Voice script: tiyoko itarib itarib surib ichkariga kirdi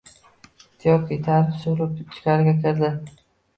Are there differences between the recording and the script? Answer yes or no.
yes